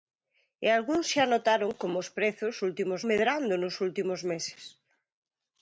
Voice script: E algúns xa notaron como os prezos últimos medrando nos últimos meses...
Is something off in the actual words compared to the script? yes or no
no